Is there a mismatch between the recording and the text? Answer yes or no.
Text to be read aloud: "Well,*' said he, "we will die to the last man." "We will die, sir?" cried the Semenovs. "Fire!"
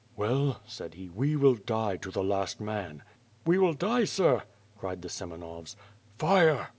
no